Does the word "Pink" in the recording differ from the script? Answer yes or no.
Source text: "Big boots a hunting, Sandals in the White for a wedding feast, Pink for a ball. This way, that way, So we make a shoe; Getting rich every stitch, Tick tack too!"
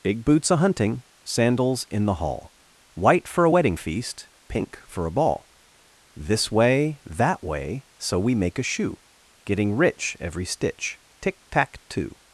no